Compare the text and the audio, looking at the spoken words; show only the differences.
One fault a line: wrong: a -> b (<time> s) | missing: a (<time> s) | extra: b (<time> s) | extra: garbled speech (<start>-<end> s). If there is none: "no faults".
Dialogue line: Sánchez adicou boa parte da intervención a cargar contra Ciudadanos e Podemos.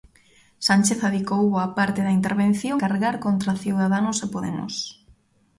missing: a (2.8 s)